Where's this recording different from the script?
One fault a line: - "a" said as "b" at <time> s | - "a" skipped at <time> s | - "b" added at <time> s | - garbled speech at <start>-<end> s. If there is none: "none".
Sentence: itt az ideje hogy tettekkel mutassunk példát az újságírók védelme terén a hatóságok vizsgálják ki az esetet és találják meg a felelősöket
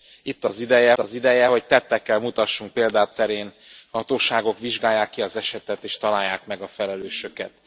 - "az ideje" added at 1.0 s
- "az újságírók védelme" skipped at 3.1 s